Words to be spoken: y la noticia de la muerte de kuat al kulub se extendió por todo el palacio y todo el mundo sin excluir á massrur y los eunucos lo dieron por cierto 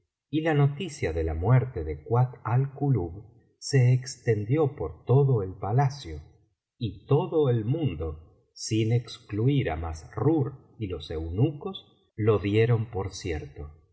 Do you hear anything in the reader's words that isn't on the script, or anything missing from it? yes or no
no